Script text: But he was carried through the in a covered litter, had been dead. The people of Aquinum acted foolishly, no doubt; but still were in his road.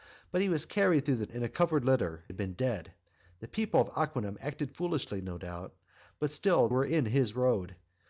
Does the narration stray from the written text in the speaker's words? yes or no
no